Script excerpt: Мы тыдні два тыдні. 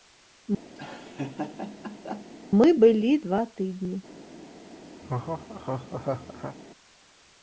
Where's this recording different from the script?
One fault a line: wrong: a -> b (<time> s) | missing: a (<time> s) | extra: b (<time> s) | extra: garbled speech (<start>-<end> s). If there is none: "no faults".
wrong: тыдні -> былі (2.8 s)